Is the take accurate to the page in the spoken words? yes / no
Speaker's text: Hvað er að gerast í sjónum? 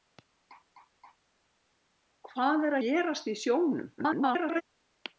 no